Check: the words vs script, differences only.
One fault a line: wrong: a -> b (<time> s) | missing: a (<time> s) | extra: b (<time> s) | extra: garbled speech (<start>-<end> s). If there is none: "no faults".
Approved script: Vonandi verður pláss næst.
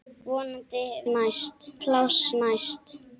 wrong: verður -> næst (1.1 s)